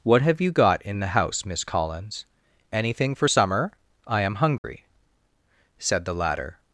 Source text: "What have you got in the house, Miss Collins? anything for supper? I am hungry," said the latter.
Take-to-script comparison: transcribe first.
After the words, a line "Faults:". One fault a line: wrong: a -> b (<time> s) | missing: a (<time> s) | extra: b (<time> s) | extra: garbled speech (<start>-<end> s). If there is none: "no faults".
"What have you got in the house, Miss Collins? anything for summer? I am hungry," said the latter.
Faults:
wrong: supper -> summer (3.3 s)